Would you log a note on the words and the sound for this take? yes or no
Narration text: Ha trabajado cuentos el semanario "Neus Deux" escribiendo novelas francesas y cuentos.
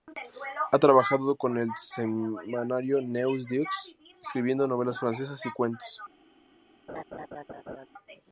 yes